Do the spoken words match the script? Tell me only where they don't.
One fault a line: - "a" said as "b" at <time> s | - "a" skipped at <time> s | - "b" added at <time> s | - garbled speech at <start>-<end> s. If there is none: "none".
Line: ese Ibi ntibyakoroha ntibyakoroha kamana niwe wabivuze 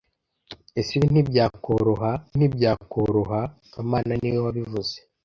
none